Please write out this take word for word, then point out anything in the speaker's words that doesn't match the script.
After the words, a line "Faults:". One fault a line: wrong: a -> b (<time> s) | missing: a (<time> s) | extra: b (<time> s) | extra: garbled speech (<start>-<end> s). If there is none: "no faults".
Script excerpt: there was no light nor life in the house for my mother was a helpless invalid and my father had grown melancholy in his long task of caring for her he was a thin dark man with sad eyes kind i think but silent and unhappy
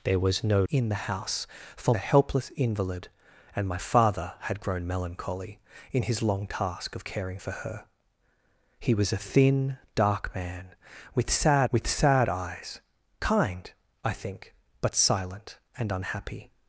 there was no in the house for a helpless invalid and my father had grown melancholy in his long task of caring for her he was a thin dark man with sad with sad eyes kind i think but silent and unhappy
Faults:
missing: light nor life (0.6 s)
missing: my mother was (1.9 s)
extra: with sad (11.7 s)